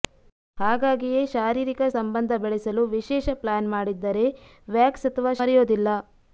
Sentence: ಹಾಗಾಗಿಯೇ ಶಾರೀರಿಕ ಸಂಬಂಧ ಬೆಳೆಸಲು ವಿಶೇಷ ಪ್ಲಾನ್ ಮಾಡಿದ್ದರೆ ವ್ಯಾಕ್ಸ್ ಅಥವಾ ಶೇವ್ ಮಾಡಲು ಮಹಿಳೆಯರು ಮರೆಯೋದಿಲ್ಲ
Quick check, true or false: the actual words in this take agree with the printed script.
false